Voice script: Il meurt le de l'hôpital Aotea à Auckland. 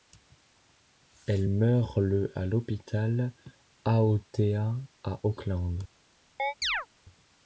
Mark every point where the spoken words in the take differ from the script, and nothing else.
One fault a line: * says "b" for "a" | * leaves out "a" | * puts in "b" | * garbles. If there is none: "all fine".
* says "Elle" for "Il"
* says "à" for "de"